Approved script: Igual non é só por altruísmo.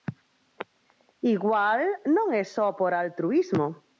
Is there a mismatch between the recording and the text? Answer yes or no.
no